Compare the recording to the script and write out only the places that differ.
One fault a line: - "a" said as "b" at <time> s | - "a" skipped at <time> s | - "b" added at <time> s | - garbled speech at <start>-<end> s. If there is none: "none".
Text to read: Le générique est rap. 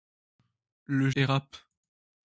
- "générique" skipped at 1.1 s